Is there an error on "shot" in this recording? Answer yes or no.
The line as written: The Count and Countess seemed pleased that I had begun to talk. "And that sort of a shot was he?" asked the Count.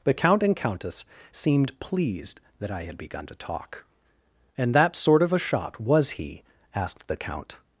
no